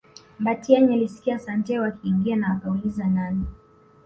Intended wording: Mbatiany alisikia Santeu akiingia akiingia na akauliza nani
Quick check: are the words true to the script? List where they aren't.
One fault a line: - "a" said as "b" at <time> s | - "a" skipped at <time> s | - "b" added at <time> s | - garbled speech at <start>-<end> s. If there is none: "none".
- "akiingia" skipped at 2.4 s